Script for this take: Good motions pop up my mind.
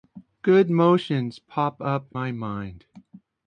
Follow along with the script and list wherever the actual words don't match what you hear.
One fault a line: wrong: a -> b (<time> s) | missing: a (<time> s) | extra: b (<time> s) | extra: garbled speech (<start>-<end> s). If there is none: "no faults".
no faults